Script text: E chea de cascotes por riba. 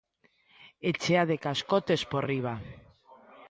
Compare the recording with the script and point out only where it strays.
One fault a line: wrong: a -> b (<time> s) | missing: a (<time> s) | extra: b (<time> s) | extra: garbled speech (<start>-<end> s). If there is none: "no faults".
no faults